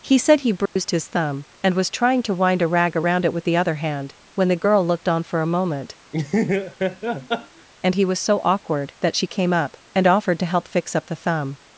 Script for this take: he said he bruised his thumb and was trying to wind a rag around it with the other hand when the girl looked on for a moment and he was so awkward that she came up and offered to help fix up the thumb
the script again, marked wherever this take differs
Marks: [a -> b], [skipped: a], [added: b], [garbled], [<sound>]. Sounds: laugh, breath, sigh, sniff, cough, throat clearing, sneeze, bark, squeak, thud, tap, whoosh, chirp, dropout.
he said he bruised [dropout] his thumb and was trying to wind a rag around it with the other hand when the girl looked on for a moment [laugh] and he was so awkward that she came up and offered to help fix up the thumb